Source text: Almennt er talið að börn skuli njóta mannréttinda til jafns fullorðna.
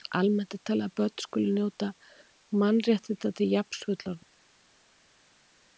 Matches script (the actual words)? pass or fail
pass